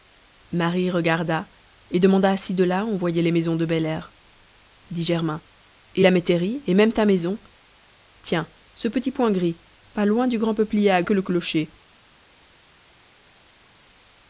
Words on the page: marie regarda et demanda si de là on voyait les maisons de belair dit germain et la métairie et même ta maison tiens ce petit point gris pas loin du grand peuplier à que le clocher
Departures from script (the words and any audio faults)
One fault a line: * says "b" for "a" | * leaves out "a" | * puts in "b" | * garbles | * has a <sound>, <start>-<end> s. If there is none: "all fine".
all fine